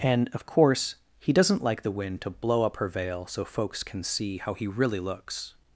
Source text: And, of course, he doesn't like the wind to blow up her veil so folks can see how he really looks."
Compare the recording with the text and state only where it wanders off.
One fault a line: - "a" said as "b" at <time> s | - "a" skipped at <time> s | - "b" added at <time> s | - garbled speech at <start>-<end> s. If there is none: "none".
none